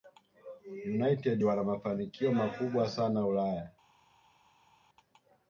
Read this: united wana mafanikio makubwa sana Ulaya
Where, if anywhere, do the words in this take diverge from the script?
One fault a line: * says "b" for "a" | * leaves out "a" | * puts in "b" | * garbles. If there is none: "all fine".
all fine